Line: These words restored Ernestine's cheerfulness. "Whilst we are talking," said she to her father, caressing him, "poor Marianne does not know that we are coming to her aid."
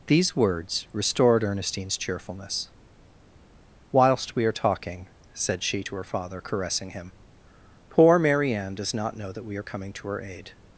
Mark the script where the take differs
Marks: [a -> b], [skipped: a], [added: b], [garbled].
These words restored Ernestine's cheerfulness. "Whilst we are talking," said she to her father, caressing him, "poor Marianne does not know that we are coming to her aid."